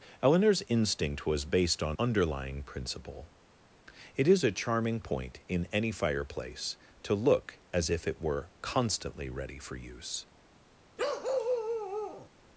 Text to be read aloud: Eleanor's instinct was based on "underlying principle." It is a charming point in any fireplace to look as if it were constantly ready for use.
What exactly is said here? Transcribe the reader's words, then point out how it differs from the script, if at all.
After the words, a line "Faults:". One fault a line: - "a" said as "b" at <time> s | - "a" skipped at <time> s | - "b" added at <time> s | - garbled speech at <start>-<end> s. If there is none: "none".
Eleanor's instinct was based on "underlying principle." It is a charming point in any fireplace to look as if it were constantly ready for use.
Faults:
none